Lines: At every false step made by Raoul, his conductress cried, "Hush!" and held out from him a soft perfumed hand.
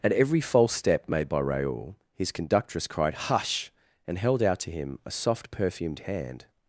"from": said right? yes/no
no